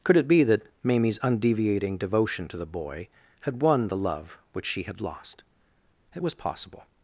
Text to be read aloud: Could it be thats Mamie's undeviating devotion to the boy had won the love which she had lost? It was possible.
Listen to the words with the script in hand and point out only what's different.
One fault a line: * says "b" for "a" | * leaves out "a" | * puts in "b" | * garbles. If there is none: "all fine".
* says "that" for "thats"